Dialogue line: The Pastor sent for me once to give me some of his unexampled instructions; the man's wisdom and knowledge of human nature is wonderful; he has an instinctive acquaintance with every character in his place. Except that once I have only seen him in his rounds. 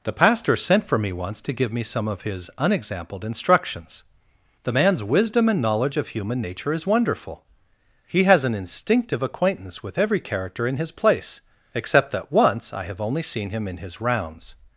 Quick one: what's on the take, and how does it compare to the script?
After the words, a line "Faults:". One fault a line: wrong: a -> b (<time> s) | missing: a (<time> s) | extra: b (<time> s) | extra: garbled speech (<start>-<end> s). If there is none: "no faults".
The Pastor sent for me once to give me some of his unexampled instructions; the man's wisdom and knowledge of human nature is wonderful; he has an instinctive acquaintance with every character in his place. Except that once I have only seen him in his rounds.
Faults:
no faults